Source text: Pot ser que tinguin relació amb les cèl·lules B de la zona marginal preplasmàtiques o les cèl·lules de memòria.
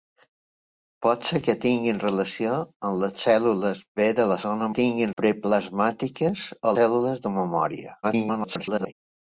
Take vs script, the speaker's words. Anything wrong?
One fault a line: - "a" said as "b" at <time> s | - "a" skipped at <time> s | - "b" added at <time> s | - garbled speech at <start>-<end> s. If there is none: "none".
- "marginal" said as "tinguin" at 4.8 s
- "les" skipped at 6.7 s
- garbled speech at 8.0-8.9 s